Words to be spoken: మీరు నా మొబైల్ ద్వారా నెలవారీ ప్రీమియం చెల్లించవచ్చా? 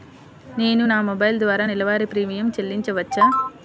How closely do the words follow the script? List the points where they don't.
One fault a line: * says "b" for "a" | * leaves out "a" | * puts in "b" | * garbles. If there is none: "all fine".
* says "నేను" for "మీరు"